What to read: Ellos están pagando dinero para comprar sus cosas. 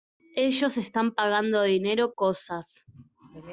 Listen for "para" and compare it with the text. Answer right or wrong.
wrong